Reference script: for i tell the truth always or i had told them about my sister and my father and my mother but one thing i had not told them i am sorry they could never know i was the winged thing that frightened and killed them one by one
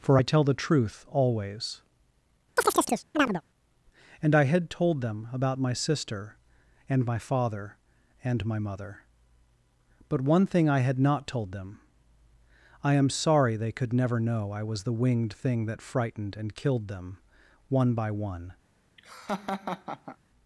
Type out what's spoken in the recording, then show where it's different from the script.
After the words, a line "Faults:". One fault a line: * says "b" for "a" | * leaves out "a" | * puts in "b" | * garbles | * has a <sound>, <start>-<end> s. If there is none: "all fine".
for i tell the truth always and i had told them about my sister and my father and my mother but one thing i had not told them i am sorry they could never know i was the winged thing that frightened and killed them one by one
Faults:
* has a chirp, 2.6-3.4 s
* says "and" for "or"
* has a laugh, 19.0-20.2 s